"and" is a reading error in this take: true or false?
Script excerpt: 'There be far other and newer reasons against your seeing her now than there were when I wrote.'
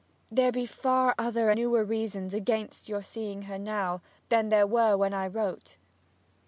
true